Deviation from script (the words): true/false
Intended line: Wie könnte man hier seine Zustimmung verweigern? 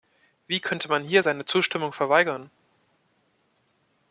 false